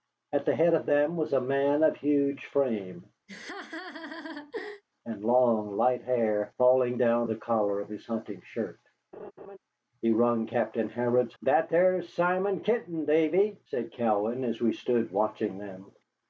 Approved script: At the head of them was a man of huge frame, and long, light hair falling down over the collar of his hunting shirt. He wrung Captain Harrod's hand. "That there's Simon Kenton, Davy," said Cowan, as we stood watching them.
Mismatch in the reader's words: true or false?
true